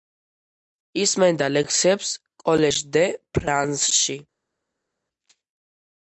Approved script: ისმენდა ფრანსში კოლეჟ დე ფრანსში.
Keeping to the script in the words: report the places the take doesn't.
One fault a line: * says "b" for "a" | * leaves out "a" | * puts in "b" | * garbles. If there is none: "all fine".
* says "ლექციებს" for "ფრანსში"